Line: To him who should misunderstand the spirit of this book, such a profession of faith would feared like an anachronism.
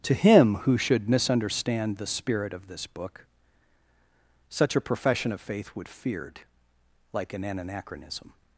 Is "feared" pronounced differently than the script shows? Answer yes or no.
no